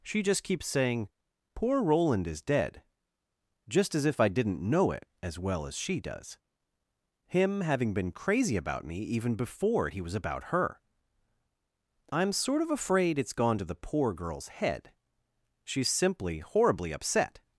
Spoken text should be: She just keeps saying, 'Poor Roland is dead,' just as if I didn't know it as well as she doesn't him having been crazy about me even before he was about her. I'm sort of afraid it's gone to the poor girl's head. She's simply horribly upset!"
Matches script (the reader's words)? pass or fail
fail